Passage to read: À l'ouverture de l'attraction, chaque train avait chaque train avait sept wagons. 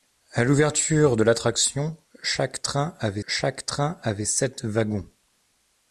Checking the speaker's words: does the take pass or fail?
pass